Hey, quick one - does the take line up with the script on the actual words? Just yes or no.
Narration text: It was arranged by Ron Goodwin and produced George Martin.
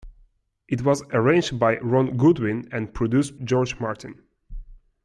yes